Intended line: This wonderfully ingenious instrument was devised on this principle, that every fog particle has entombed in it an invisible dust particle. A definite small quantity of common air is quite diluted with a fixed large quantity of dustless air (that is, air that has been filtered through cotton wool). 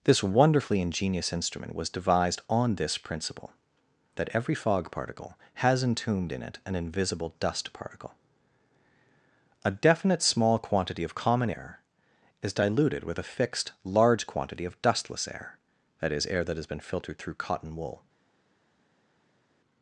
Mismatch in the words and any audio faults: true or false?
true